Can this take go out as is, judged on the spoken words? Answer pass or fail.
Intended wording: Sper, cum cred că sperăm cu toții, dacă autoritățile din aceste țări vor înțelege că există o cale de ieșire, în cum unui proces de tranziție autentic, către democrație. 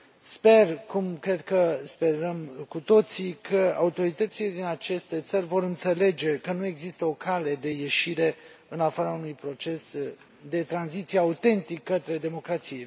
fail